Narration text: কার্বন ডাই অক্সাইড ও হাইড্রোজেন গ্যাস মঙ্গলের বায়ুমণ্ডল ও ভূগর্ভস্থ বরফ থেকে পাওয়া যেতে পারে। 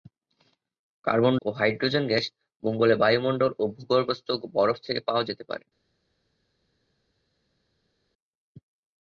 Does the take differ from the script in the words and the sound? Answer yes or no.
yes